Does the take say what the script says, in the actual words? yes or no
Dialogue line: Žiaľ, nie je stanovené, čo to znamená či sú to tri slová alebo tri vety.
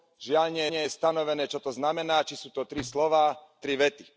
no